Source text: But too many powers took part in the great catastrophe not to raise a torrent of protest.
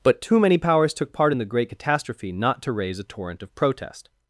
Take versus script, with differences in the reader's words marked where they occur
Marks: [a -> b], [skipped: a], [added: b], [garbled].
But too many powers took part in the great catastrophe not to raise a torrent of protest.